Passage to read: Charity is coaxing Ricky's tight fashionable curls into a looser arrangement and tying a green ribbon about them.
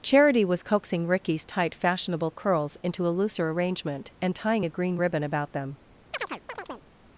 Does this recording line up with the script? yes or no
no